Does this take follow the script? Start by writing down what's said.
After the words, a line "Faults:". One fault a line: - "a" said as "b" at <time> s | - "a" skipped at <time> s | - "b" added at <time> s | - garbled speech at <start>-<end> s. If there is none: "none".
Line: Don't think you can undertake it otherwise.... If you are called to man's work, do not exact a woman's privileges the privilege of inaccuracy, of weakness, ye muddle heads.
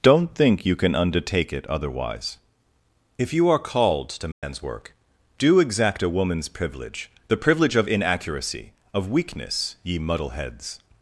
Don't think you can undertake it otherwise.... If you are called to man's work, do exact a woman's privilege the privilege of inaccuracy, of weakness, ye muddle heads.
Faults:
- "not" skipped at 5.6 s
- "privileges" said as "privilege" at 6.5 s